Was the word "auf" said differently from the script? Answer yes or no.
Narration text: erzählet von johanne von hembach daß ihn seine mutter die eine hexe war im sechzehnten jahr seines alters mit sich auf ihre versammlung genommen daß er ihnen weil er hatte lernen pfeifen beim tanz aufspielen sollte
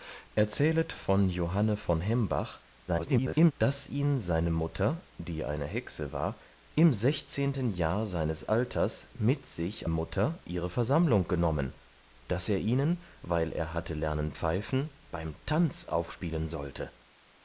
yes